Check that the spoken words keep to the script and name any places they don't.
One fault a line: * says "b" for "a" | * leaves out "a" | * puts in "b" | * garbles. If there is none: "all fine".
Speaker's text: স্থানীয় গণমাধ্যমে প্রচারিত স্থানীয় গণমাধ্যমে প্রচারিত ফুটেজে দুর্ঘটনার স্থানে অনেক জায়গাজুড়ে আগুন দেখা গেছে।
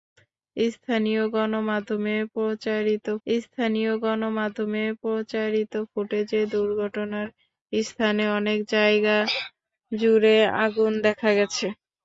all fine